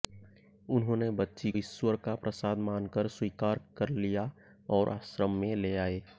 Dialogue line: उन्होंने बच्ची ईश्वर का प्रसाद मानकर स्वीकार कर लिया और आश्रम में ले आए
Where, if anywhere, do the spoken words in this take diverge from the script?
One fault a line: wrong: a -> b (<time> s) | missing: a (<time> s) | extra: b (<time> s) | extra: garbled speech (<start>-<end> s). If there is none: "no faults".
no faults